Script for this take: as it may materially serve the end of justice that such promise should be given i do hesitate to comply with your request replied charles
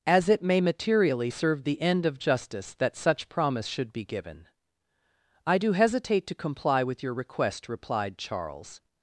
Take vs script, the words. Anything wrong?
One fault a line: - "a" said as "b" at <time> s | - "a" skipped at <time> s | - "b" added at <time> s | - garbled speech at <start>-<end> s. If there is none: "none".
none